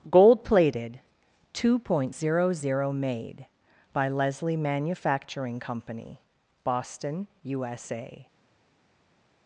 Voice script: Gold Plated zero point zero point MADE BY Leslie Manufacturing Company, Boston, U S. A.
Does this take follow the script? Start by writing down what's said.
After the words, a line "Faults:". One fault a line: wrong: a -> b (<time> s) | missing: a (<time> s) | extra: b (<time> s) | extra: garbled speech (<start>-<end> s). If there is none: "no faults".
Gold Plated two point zero zero MADE BY Leslie Manufacturing Company, Boston, U S. A.
Faults:
wrong: zero -> two (1.5 s)
wrong: point -> zero (2.5 s)